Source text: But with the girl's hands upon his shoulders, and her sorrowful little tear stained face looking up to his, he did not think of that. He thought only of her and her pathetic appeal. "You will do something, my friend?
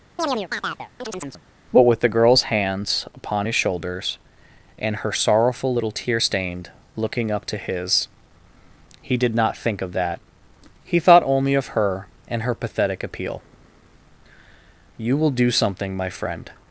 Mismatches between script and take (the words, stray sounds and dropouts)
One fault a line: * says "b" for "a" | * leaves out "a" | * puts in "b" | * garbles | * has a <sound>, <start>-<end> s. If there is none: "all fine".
* has a chirp, 0.2-1.4 s
* leaves out "face"